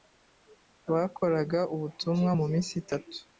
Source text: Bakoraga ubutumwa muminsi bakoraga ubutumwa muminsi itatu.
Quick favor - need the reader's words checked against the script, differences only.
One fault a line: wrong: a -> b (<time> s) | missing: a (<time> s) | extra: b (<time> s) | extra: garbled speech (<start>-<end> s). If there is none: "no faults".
missing: bakoraga ubutumwa muminsi (2.7 s)